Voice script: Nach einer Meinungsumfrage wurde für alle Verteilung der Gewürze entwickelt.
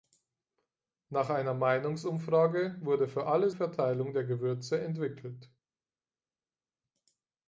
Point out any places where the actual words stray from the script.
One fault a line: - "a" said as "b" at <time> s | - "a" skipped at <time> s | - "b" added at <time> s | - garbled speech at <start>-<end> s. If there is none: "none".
none